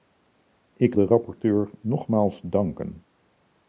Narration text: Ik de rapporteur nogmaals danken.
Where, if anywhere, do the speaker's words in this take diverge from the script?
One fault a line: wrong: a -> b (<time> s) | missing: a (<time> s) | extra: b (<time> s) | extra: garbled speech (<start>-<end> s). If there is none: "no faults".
no faults